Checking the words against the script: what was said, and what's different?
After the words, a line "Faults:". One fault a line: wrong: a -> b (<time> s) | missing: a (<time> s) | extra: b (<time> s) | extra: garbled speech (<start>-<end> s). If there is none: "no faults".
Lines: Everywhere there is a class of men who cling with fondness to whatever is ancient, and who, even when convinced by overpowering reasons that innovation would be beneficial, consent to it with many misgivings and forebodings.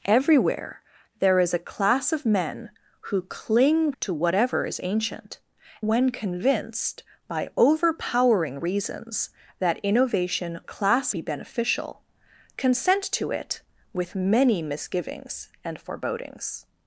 Everywhere there is a class of men who cling to whatever is ancient, when convinced by overpowering reasons that innovation class be beneficial, consent to it with many misgivings and forebodings.
Faults:
missing: with fondness (3.9 s)
missing: and who even (5.4 s)
wrong: would -> class (10.6 s)